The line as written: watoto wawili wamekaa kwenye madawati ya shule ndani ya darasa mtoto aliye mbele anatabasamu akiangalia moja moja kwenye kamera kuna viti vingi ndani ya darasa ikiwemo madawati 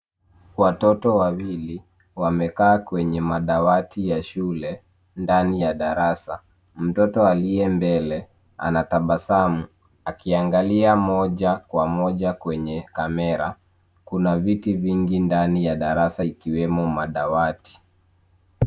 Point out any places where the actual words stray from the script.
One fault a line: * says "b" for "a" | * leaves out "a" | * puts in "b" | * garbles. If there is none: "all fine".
* puts in "kwa"